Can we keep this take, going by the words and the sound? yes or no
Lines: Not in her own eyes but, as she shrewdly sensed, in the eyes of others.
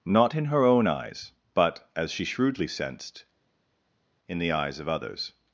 yes